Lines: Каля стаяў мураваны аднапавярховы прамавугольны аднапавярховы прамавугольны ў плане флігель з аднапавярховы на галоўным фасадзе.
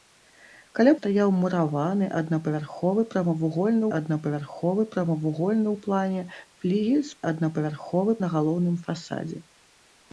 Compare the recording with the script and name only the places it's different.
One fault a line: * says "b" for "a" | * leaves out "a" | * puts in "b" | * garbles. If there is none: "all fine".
all fine